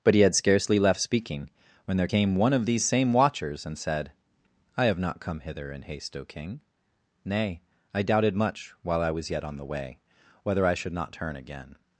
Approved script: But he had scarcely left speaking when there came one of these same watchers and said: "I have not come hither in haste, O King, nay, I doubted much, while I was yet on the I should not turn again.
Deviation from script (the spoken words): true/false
true